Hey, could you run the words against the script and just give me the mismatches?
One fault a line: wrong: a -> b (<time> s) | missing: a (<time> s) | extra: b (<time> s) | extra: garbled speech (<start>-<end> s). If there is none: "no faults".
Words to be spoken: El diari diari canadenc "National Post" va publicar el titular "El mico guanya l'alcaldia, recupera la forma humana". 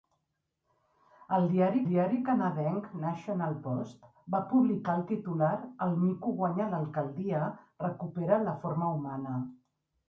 no faults